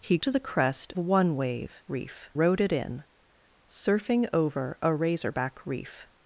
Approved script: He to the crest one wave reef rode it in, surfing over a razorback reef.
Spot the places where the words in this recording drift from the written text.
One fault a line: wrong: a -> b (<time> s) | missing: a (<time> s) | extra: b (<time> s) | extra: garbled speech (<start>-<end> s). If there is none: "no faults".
no faults